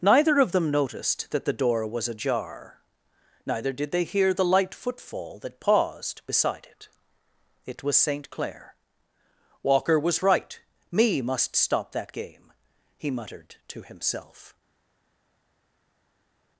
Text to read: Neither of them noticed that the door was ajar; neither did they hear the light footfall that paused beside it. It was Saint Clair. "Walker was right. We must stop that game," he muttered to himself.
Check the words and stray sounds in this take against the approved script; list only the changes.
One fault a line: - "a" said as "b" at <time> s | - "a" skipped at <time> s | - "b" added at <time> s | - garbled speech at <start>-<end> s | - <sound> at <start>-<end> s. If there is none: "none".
- "We" said as "Me" at 10.9 s